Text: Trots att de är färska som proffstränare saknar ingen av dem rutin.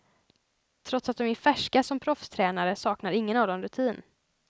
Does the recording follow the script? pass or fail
pass